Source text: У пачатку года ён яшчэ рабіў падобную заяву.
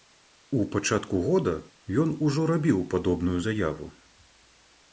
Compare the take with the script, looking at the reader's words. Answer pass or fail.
fail